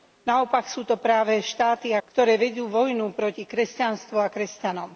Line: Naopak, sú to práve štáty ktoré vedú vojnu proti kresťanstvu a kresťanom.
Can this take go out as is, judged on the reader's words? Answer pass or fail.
pass